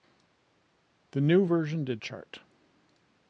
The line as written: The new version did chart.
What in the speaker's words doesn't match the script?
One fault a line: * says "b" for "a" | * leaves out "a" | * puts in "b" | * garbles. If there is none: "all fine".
all fine